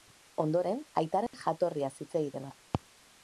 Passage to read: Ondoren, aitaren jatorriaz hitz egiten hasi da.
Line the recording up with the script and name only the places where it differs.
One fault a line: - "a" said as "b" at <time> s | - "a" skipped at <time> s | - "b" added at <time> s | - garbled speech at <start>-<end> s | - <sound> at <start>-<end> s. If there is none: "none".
- dropout at 1.3-1.3 s
- "hasi" skipped at 2.5 s